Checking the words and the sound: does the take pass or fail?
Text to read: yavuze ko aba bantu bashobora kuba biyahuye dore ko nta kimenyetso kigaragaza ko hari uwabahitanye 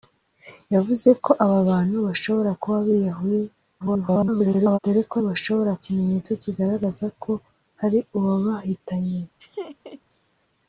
fail